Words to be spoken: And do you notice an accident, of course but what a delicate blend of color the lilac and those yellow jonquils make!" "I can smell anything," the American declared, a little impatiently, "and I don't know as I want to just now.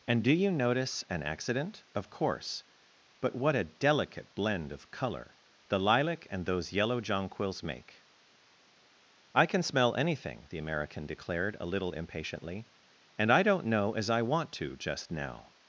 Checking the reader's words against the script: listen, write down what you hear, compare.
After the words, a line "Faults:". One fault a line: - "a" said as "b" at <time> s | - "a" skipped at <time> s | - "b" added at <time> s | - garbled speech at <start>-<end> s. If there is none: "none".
And do you notice an accident, of course but what a delicate blend of color the lilac and those yellow jonquils make!" "I can smell anything," the American declared, a little impatiently, "and I don't know as I want to just now.
Faults:
none